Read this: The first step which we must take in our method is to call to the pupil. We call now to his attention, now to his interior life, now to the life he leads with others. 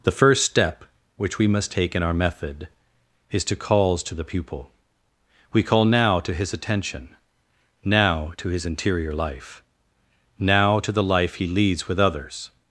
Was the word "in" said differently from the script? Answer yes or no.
no